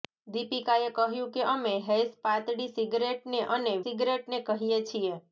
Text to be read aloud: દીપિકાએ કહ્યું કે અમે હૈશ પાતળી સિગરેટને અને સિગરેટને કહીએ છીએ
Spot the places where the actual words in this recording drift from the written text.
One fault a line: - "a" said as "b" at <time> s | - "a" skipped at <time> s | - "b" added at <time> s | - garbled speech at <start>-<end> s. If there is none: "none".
none